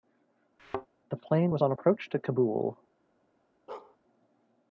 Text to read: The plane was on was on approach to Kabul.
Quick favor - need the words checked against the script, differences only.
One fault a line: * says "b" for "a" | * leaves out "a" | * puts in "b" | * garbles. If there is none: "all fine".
* leaves out "was on"